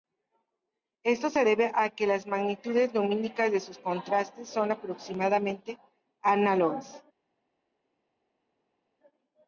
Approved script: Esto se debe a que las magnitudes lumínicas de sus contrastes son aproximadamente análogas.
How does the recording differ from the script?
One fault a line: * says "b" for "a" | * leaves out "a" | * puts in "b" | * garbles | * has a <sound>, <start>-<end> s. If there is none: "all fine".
all fine